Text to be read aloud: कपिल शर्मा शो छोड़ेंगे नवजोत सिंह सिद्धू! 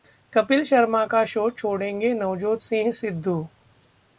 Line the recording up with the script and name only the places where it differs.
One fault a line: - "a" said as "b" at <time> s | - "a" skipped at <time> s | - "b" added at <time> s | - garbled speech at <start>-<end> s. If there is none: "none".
- "का" added at 1.0 s